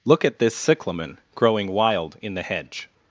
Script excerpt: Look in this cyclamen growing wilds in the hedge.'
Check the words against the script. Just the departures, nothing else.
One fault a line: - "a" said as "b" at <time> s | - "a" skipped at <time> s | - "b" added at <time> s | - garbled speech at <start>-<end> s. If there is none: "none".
- "in" said as "at" at 0.2 s
- "wilds" said as "wild" at 1.7 s